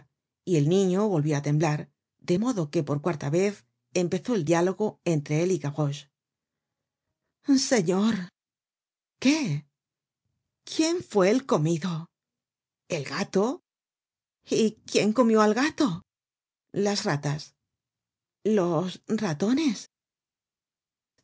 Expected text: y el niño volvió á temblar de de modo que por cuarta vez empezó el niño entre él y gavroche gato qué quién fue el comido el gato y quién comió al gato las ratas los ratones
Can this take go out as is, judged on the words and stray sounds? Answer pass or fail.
fail